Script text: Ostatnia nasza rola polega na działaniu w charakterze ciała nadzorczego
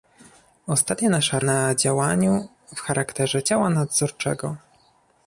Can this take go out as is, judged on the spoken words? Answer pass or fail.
fail